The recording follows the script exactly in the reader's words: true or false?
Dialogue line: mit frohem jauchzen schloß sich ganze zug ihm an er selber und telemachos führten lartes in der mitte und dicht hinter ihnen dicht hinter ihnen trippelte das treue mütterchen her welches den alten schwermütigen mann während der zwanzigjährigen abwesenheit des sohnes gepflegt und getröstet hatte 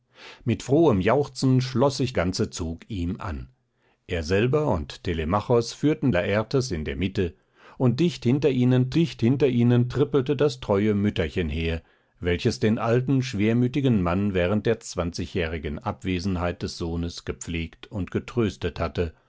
true